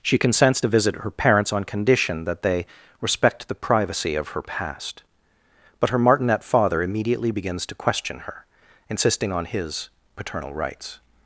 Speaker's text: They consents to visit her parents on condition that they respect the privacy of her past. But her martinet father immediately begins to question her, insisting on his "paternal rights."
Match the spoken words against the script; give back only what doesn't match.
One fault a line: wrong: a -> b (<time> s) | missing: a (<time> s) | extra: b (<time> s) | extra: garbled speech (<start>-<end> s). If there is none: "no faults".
wrong: They -> She (0.0 s)